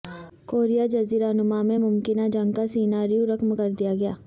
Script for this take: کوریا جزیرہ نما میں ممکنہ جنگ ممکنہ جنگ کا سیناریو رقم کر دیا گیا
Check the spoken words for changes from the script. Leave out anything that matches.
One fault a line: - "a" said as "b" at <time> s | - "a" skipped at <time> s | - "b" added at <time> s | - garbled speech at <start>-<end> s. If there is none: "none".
- "ممکنہ جنگ" skipped at 2.5 s